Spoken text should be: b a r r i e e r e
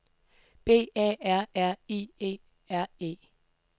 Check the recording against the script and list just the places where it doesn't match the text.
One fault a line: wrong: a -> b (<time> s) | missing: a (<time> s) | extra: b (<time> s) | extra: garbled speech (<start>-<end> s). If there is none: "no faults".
missing: e (2.4 s)